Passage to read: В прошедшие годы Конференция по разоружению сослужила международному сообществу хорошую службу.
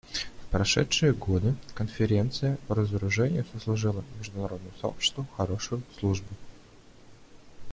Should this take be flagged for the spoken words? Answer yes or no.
no